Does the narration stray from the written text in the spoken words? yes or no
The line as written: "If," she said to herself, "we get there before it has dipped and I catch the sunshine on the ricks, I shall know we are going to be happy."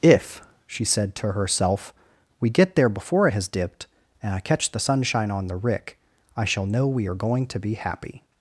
yes